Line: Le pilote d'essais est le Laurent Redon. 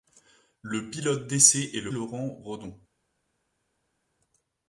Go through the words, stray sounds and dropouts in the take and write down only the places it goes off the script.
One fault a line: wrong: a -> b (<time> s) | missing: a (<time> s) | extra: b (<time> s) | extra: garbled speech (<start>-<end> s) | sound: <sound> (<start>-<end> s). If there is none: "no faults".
no faults